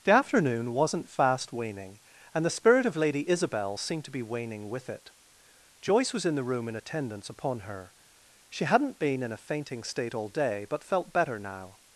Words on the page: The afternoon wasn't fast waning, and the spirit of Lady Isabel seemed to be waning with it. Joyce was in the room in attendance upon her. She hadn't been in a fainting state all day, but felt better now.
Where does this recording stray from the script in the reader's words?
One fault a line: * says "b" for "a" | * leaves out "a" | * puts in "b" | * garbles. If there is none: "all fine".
all fine